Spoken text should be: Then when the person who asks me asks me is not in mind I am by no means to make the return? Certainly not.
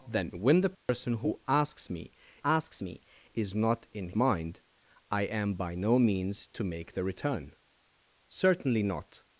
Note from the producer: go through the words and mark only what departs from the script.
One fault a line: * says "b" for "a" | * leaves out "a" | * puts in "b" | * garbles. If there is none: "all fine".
all fine